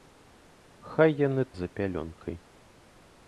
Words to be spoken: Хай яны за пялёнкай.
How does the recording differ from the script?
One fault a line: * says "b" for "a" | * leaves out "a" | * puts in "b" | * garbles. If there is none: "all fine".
all fine